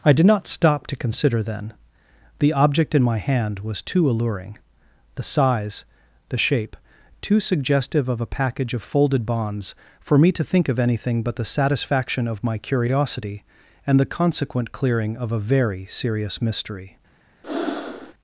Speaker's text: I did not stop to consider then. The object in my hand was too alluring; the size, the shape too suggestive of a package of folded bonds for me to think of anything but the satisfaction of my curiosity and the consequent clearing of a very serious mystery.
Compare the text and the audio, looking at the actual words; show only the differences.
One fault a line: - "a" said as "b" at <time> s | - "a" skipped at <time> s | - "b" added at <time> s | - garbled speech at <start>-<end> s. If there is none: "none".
none